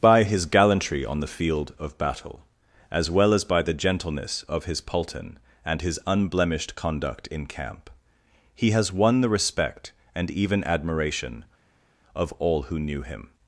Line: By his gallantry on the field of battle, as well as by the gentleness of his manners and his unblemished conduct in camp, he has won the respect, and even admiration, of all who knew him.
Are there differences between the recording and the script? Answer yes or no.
yes